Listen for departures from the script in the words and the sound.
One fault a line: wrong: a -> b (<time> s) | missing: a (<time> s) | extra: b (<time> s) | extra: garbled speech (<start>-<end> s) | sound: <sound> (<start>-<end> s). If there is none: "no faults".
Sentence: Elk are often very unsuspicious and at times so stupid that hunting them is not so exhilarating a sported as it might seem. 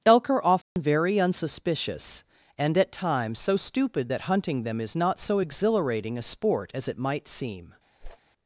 sound: dropout (0.6-0.8 s)
wrong: sported -> sport (6.2 s)
sound: whoosh (8.0-8.2 s)